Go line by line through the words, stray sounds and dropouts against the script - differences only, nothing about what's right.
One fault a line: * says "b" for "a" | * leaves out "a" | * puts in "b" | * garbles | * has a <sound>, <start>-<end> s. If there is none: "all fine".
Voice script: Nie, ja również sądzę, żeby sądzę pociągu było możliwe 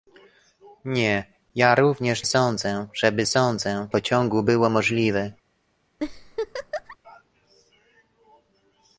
* has a laugh, 6.0-7.0 s